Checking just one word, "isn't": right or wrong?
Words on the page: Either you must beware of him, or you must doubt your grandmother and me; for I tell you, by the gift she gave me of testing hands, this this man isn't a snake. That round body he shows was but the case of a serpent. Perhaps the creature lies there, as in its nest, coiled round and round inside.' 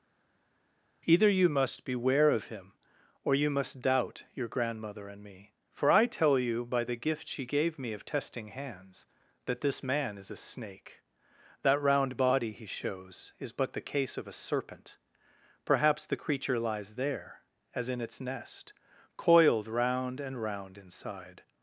wrong